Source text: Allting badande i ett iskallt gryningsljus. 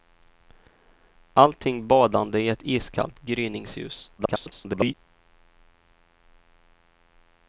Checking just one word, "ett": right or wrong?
right